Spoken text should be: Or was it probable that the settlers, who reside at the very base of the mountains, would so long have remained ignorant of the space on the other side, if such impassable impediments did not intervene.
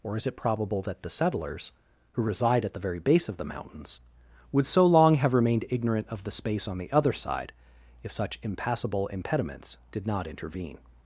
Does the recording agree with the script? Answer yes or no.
no